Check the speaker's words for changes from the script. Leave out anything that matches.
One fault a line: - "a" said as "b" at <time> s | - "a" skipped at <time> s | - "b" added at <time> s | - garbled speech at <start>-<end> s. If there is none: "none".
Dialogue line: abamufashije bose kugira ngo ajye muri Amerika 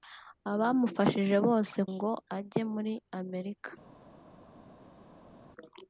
- "kugira" skipped at 1.8 s